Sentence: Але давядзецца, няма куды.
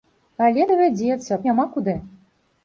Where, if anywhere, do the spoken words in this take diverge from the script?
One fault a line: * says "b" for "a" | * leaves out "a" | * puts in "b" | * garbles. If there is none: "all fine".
all fine